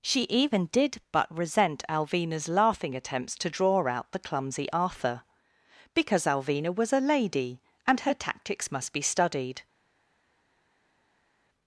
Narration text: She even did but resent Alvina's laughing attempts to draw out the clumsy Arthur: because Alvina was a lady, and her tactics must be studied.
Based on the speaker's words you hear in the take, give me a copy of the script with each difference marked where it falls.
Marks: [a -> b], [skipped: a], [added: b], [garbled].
She even did but resent Alvina's laughing attempts to draw out the clumsy Arthur: because Alvina was a lady, and her tactics must be studied.